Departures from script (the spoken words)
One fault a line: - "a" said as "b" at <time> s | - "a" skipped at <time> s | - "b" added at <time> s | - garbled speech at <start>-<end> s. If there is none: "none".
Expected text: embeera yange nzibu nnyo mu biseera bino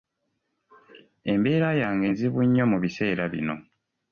none